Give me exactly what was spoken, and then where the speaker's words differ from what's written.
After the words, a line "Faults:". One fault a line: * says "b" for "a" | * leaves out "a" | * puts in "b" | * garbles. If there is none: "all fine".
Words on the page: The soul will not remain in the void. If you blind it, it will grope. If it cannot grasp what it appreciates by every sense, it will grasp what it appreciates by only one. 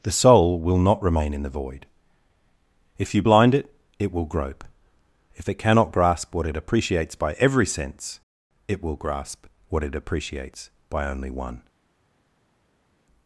The soul will not remain in the void. If you blind it, it will grope. If it cannot grasp what it appreciates by every sense, it will grasp what it appreciates by only one.
Faults:
all fine